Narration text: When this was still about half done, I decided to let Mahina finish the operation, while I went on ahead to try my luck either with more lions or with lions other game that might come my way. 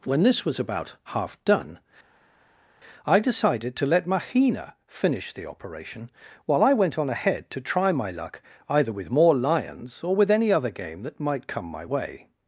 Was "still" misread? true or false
true